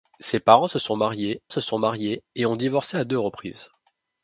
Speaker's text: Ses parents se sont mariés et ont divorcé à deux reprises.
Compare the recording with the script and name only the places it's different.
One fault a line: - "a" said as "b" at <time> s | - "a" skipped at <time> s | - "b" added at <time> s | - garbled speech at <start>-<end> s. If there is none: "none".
- "se sont mariés" added at 1.5 s